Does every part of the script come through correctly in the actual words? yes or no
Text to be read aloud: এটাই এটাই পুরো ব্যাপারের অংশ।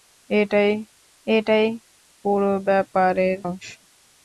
yes